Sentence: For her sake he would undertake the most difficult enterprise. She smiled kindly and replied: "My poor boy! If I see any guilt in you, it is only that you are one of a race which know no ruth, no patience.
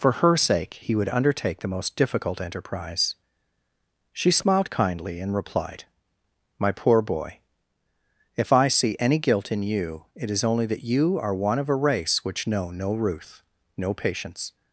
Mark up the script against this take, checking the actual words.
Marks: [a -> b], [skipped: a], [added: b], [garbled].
For her sake he would undertake the most difficult enterprise. She smiled kindly and replied: "My poor boy! If I see any guilt in you, it is only that you are one of a race which know no ruth, no patience.